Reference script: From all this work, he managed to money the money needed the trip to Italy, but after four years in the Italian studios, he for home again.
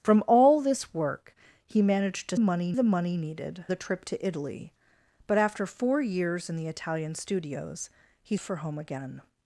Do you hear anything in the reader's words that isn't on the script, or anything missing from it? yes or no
no